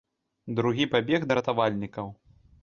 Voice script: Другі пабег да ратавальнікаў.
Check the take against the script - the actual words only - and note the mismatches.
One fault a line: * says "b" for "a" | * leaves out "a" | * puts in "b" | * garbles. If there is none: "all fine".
all fine